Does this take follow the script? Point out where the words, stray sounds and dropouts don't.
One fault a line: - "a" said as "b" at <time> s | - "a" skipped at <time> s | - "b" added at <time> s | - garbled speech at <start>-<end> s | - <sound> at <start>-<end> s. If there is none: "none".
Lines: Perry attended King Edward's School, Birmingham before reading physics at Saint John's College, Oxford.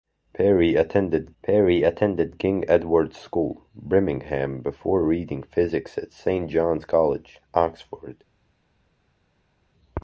- "perry attended" added at 1.4 s